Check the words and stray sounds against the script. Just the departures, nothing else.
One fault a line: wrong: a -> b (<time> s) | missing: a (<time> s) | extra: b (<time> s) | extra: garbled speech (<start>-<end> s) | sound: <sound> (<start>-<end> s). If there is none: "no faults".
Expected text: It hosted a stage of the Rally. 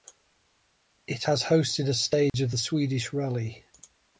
extra: has (1.2 s)
sound: dropout (2.3-2.3 s)
extra: Swedish (2.6 s)